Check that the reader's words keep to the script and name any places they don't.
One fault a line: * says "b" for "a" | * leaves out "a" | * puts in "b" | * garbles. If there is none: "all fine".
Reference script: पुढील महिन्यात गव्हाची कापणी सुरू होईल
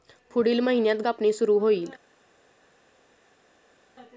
* leaves out "गव्हाची"